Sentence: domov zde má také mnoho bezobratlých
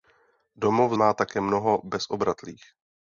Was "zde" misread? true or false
true